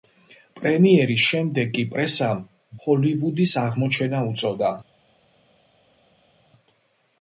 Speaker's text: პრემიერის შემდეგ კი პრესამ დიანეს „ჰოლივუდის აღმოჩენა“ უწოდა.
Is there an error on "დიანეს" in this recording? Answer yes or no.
yes